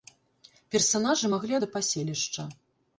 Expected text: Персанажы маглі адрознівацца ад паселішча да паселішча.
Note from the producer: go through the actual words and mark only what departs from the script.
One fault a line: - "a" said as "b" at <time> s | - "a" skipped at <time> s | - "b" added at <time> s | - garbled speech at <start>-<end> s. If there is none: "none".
- "адрознівацца ад паселішча" skipped at 1.6 s